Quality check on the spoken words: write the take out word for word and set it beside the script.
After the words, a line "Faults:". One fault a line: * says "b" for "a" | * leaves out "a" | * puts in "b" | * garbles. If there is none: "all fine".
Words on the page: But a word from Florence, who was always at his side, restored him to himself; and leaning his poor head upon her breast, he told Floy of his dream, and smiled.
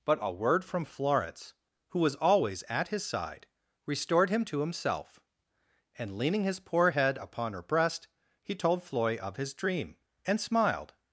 But a word from Florence, who was always at his side, restored him to himself; and leaning his poor head upon her breast, he told Floy of his dream, and smiled.
Faults:
all fine